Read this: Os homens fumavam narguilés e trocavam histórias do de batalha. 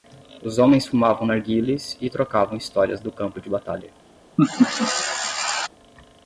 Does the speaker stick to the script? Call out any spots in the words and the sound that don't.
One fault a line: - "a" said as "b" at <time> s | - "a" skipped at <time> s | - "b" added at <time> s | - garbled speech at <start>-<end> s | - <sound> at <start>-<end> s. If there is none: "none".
- "campo" added at 3.1 s
- laugh at 4.4-5.7 s